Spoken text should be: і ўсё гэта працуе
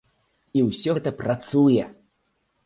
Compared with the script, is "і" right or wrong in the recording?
right